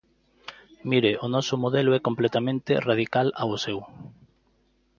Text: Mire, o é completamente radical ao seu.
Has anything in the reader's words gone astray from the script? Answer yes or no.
yes